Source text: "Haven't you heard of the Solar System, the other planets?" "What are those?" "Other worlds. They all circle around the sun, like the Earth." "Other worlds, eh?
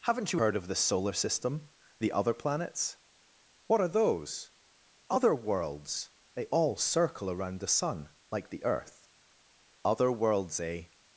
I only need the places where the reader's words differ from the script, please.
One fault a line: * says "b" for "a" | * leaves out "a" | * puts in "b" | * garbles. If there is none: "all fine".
all fine